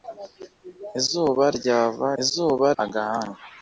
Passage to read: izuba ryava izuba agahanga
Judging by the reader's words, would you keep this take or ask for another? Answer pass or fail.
pass